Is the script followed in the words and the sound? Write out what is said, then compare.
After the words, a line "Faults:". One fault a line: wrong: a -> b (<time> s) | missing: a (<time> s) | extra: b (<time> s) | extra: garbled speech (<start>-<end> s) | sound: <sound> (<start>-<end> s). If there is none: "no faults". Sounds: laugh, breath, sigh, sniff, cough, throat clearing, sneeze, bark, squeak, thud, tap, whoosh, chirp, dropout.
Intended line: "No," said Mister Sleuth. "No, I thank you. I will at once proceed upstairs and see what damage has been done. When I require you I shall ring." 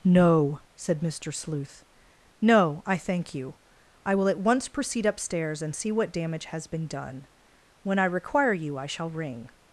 "No," said Mister Sleuth. "No, I thank you. I will at once proceed upstairs and see what damage has been done. When I require you I shall ring."
Faults:
no faults